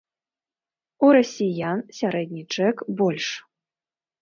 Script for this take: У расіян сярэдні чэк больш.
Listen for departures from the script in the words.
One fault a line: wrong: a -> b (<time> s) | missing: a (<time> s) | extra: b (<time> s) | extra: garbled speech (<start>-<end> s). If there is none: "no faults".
no faults